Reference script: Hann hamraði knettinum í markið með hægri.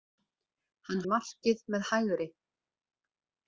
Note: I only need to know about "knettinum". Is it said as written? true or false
false